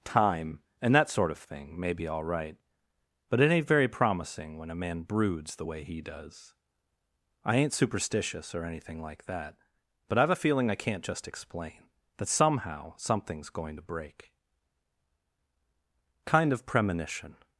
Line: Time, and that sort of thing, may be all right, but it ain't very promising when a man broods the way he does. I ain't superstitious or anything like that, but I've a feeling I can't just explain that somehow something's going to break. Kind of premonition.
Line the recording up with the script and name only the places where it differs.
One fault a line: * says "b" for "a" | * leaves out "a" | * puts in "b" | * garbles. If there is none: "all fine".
all fine